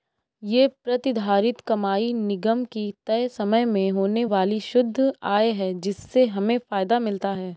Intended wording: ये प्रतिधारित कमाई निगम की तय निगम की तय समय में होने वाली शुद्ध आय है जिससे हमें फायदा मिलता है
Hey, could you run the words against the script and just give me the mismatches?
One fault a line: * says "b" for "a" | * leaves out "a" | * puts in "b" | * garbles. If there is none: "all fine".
* leaves out "निगम की तय"